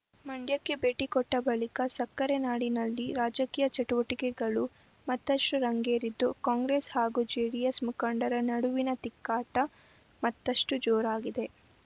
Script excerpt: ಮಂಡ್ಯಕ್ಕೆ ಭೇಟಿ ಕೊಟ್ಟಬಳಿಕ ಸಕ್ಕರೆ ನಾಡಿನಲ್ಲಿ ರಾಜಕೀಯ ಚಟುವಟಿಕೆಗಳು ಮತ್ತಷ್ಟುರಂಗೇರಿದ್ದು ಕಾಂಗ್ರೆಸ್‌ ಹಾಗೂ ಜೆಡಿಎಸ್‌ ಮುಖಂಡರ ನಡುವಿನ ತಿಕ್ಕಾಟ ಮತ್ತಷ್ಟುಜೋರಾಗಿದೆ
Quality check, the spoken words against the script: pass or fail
pass